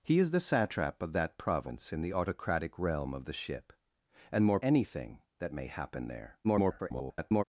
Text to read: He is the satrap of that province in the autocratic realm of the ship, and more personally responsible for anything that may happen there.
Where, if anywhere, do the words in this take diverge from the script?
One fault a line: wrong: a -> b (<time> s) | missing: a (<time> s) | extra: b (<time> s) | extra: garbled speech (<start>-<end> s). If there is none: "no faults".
missing: personally responsible for (4.6 s)
extra: garbled speech (6.4-7.4 s)